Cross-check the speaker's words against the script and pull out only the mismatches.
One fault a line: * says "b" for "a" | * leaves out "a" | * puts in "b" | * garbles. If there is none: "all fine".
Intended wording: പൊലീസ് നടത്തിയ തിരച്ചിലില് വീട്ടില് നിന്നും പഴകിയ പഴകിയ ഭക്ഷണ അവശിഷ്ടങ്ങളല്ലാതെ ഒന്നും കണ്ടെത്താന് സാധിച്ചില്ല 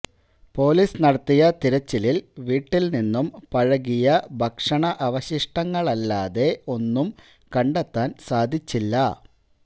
* leaves out "പഴകിയ"